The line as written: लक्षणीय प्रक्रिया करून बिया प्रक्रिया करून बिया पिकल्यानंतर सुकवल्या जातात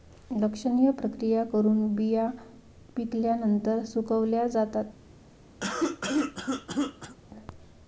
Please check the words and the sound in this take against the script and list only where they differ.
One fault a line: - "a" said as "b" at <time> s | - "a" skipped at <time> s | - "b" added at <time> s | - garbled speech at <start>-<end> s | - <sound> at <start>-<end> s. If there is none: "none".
- "प्रक्रिया करून बिया" skipped at 2.3 s
- cough at 5.6-7.2 s